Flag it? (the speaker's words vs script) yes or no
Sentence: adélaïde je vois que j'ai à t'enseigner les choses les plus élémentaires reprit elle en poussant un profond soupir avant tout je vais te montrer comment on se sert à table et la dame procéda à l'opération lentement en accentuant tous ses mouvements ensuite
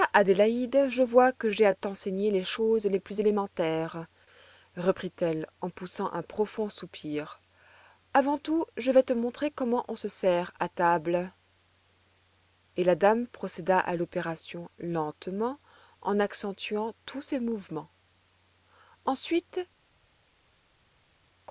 no